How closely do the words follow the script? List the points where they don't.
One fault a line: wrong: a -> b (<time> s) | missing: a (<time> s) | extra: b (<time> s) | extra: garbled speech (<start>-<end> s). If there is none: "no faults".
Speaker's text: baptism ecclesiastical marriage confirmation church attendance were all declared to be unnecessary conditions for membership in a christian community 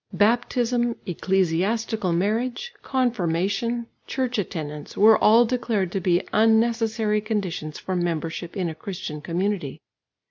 no faults